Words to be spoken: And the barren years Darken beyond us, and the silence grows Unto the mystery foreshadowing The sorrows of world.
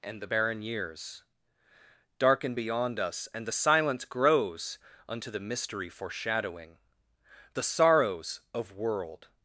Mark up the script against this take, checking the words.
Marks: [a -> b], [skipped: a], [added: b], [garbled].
And the barren years Darken beyond us, and the silence grows Unto the mystery foreshadowing The sorrows of world.